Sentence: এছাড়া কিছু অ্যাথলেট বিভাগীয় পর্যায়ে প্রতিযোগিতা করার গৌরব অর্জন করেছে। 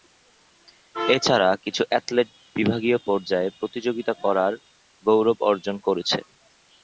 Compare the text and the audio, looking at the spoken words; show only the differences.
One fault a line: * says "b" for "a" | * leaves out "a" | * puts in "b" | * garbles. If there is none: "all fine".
all fine